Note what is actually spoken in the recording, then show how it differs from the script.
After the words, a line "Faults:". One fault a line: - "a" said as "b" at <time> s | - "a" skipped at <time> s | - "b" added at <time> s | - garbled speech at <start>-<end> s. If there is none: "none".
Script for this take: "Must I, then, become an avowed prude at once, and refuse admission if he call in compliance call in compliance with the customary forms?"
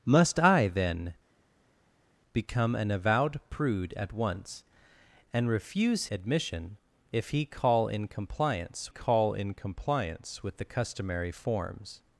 "Must I, then, become an avowed prude at once, and refuse admission if he call in compliance call in compliance with the customary forms?"
Faults:
none